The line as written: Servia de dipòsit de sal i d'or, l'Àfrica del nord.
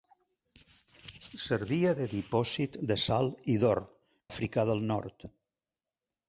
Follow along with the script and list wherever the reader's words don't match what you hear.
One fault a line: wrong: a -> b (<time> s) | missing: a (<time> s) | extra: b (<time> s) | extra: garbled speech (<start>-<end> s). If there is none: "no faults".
no faults